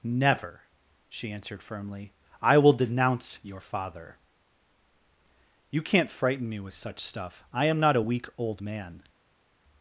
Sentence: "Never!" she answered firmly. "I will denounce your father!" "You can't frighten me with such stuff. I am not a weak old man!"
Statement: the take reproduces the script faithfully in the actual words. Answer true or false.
true